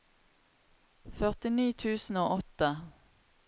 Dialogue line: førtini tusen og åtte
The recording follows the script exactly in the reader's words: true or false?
true